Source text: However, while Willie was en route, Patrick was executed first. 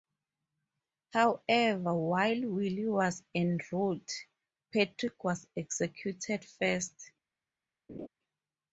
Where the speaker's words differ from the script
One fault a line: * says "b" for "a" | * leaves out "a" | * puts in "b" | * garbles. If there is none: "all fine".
all fine